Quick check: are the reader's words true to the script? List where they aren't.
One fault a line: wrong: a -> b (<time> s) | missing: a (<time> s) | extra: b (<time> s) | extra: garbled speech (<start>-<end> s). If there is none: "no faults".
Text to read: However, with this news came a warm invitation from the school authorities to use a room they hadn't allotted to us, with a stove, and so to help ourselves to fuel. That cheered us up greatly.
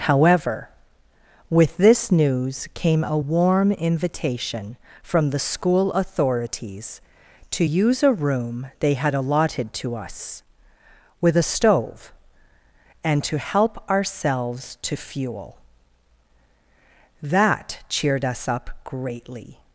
wrong: hadn't -> had (8.9 s)
missing: so (13.2 s)